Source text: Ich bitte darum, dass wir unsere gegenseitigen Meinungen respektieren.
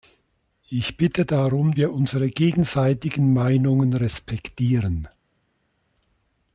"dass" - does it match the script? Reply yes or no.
no